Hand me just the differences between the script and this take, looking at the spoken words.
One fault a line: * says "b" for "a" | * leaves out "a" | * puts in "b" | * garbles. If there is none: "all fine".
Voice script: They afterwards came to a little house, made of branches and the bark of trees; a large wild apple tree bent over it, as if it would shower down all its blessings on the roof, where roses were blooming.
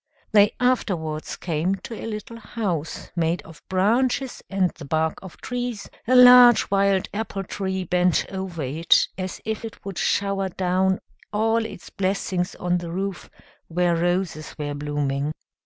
all fine